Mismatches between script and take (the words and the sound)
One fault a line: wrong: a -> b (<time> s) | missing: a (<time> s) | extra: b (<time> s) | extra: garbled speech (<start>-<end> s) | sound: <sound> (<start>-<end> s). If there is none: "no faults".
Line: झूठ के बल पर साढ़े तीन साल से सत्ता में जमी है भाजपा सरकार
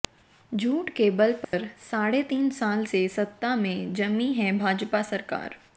sound: dropout (1.4-1.5 s)